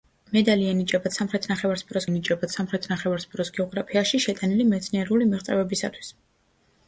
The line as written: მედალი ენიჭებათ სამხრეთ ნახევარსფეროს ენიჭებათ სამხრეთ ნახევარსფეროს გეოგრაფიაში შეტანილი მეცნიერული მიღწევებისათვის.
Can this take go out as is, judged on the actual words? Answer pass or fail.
pass